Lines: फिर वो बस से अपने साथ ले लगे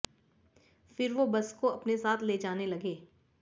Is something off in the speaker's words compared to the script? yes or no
yes